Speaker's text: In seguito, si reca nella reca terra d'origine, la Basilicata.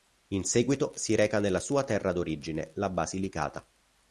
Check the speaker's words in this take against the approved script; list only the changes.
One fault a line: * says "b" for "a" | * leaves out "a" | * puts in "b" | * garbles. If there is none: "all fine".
* says "sua" for "reca"